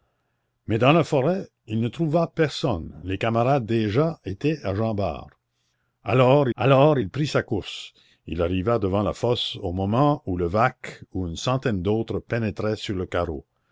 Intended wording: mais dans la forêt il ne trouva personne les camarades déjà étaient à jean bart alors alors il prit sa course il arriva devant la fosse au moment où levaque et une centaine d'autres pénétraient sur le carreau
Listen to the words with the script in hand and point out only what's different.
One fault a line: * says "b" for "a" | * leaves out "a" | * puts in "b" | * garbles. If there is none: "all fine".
all fine